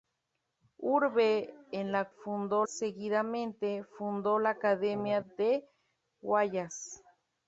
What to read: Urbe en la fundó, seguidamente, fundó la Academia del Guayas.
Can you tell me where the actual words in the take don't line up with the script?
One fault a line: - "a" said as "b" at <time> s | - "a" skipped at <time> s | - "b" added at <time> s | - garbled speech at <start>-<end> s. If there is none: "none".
none